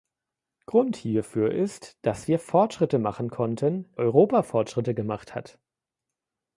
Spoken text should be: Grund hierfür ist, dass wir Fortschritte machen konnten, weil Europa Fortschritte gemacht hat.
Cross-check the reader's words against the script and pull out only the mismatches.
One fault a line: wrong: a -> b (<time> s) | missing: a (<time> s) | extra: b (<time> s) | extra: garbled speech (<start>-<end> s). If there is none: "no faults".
missing: weil (3.9 s)